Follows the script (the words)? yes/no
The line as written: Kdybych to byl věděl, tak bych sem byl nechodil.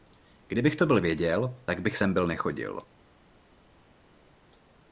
yes